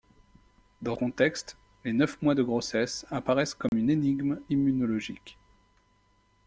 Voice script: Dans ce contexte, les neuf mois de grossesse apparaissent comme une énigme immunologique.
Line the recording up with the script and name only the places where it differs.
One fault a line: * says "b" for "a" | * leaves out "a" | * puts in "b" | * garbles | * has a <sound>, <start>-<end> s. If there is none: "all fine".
* leaves out "ce"
* has a dropout, 3.7-3.7 s